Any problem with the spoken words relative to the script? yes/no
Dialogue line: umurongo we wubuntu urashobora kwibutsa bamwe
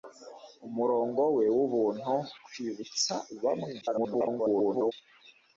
yes